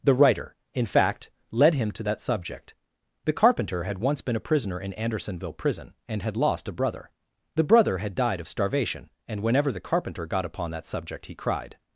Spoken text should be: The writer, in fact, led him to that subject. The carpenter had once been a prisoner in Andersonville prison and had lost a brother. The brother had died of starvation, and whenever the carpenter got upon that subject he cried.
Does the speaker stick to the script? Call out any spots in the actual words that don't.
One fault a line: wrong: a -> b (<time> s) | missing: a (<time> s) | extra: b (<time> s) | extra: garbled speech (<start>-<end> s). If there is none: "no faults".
no faults